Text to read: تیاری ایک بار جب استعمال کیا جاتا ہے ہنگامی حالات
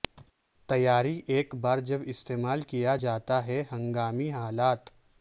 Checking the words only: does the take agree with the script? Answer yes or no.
yes